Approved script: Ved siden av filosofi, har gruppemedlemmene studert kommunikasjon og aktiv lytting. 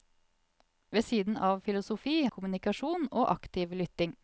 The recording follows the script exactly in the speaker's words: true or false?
false